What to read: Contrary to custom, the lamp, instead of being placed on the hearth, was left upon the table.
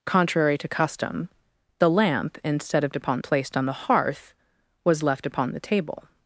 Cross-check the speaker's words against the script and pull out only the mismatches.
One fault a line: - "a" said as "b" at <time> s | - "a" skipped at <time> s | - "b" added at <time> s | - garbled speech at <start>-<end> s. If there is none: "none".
- "being" said as "upon" at 2.9 s